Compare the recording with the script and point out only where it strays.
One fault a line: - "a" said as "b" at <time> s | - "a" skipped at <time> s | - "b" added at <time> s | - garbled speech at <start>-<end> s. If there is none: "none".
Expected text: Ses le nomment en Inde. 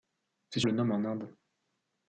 none